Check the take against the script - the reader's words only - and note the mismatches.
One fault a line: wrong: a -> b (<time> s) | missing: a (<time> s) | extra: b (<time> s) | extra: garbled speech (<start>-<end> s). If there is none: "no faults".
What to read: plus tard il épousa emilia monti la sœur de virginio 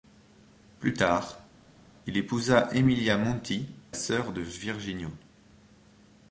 missing: la (3.7 s)